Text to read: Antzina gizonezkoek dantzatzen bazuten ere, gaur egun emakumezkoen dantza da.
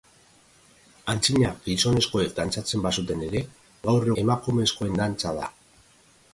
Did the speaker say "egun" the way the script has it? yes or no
no